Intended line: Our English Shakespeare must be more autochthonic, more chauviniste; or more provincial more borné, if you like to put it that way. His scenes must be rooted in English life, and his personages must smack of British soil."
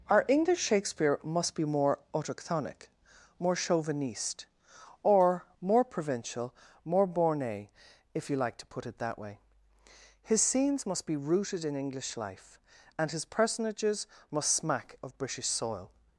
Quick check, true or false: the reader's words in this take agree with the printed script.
true